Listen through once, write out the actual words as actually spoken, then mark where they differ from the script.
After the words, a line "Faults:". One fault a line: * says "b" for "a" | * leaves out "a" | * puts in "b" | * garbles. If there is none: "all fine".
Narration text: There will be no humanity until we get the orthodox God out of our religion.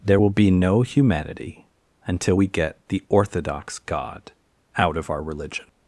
There will be no humanity until we get the orthodox God out of our religion.
Faults:
all fine